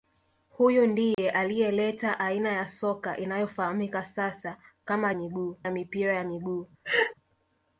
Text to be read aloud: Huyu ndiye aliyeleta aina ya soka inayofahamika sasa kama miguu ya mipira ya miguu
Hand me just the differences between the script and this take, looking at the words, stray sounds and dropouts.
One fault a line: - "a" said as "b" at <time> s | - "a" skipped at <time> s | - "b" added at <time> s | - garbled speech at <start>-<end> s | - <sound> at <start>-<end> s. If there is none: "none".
- dropout at 1.1-1.2 s
- laugh at 6.8-7.1 s